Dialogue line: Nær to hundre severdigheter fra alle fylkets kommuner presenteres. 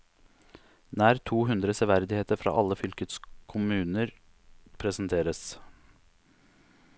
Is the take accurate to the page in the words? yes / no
yes